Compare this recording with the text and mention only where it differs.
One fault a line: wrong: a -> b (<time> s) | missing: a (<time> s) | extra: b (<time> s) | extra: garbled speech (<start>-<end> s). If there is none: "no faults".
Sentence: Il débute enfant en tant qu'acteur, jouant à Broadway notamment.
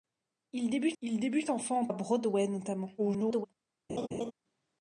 extra: il débute (1.0 s)
missing: tant qu'acteur jouant (1.9 s)
extra: garbled speech (3.0-3.5 s)